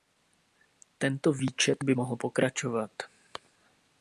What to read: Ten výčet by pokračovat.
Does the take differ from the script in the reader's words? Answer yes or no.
yes